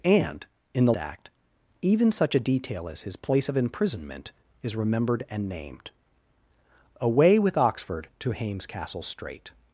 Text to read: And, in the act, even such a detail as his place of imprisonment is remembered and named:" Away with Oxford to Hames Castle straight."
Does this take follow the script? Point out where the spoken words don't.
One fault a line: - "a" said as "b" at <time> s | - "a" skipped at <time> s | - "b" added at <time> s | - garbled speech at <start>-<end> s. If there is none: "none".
none